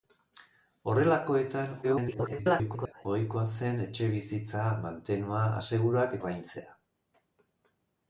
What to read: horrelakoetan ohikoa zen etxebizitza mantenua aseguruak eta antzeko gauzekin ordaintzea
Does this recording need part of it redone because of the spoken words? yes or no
yes